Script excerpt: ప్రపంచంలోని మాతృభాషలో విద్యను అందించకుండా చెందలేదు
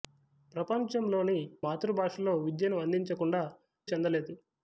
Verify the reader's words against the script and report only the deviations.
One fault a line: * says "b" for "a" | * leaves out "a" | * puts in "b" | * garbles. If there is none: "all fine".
all fine